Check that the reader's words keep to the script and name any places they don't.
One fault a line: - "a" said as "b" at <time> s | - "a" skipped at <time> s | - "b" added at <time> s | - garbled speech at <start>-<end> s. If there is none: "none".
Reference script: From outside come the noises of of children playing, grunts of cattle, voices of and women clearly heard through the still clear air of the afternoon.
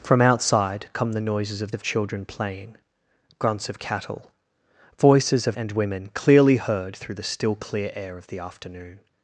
none